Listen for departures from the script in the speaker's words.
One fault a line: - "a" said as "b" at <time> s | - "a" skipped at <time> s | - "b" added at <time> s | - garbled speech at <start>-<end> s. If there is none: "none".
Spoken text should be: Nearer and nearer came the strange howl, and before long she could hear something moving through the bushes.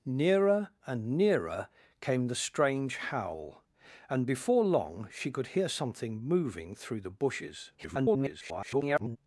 - garbled speech at 7.8-9.2 s